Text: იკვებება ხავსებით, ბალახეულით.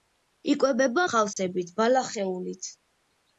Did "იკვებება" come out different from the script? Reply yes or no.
no